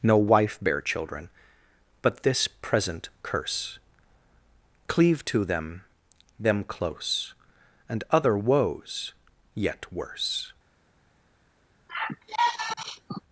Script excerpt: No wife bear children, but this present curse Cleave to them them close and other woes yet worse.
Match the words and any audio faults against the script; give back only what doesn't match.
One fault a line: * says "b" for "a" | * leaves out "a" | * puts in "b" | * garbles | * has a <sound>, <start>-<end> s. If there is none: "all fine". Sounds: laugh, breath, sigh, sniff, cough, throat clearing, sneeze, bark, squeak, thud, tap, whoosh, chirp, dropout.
* has a sigh, 11.9-13.2 s